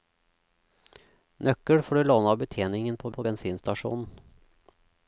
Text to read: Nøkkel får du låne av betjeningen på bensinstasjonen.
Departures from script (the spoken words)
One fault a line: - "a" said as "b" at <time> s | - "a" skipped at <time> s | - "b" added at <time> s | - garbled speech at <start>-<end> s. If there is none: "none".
- "på" added at 3.2 s